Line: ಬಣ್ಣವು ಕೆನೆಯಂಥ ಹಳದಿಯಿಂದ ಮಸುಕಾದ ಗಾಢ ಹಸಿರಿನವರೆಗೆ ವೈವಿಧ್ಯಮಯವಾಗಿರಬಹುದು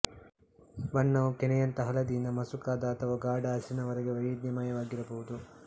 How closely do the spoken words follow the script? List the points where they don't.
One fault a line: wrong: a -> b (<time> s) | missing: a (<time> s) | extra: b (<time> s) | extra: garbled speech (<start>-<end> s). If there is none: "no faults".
extra: ಅಥವಾ (3.0 s)